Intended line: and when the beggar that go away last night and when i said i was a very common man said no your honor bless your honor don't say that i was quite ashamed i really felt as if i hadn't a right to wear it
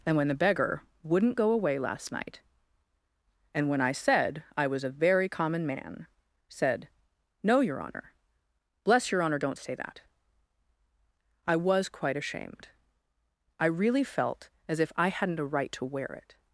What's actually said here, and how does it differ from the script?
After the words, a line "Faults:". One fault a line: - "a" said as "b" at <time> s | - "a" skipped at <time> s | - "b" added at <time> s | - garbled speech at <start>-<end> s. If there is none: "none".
and when the beggar wouldn't go away last night and when i said i was a very common man said no your honor bless your honor don't say that i was quite ashamed i really felt as if i hadn't a right to wear it
Faults:
- "that" said as "wouldn't" at 1.0 s